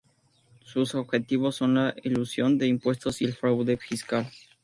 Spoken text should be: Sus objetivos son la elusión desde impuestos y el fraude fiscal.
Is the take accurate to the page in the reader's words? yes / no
no